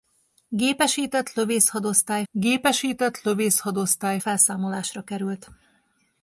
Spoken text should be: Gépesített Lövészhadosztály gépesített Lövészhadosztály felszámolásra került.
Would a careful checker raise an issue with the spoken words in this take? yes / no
no